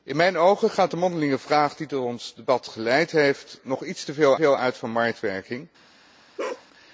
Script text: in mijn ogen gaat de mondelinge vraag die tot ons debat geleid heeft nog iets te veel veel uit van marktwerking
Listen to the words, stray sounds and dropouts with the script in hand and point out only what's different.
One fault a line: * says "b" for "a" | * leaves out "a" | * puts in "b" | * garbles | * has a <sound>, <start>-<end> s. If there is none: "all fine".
* has a bark, 6.4-6.7 s